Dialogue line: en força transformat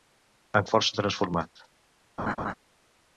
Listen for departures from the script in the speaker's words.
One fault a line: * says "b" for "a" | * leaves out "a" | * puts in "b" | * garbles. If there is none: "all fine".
all fine